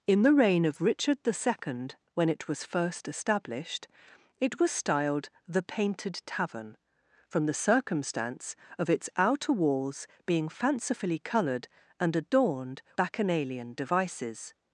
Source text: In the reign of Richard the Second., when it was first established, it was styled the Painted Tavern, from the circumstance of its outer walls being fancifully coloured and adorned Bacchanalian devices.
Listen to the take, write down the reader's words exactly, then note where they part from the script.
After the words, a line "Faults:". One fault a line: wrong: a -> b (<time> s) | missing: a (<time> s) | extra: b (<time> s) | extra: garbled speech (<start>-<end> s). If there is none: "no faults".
In the reign of Richard the Second., when it was first established, it was styled the Painted Tavern, from the circumstance of its outer walls being fancifully coloured and adorned Bacchanalian devices.
Faults:
no faults